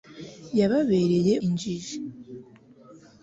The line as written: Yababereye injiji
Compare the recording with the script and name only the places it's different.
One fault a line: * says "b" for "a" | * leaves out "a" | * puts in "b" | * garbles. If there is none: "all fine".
all fine